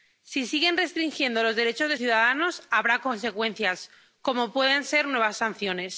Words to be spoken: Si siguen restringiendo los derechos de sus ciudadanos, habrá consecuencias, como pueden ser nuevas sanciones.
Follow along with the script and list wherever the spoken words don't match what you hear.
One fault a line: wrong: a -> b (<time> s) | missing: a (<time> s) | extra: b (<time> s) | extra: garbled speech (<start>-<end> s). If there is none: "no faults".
missing: sus (2.0 s)